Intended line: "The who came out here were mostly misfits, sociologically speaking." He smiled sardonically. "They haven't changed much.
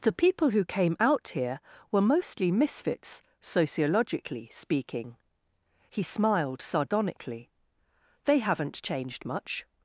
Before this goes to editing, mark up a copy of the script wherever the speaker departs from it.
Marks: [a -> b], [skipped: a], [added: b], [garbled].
"The [added: people] who came out here were mostly misfits, sociologically speaking." He smiled sardonically. "They haven't changed much.